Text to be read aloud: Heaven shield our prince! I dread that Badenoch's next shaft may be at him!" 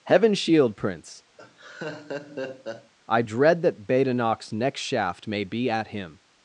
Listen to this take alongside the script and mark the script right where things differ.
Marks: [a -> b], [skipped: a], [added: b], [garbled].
Heaven shield [skipped: our] prince! I dread that Badenoch's next shaft may be at him!"